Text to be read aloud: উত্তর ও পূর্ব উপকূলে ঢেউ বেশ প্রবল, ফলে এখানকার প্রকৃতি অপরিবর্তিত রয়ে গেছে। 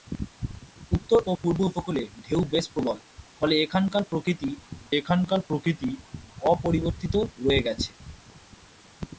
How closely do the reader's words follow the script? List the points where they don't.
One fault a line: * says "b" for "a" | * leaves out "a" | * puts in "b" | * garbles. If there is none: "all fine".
* puts in "এখানকার প্রকৃতি"